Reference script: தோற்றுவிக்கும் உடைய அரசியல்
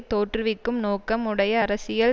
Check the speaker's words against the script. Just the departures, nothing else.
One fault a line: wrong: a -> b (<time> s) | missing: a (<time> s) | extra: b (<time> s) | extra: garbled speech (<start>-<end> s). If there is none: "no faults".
extra: நோக்கம் (0.8 s)